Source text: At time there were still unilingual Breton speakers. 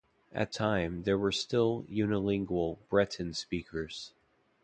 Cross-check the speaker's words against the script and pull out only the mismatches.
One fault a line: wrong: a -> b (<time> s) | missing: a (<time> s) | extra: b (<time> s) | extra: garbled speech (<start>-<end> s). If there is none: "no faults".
no faults